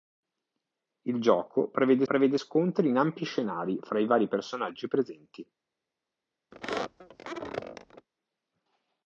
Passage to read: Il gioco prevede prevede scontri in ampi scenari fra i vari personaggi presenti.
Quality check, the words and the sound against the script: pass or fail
fail